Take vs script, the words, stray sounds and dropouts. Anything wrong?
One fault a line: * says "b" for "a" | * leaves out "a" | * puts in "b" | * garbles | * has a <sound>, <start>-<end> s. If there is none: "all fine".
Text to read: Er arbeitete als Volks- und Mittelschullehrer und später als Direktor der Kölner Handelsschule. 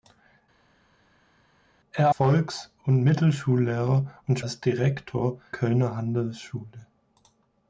* leaves out "arbeitete als"
* leaves out "später"
* leaves out "der"